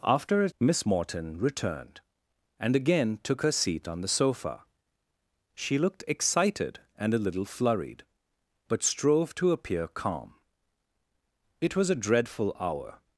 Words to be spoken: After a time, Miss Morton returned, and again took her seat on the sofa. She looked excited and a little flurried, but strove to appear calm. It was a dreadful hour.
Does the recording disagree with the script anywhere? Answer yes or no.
yes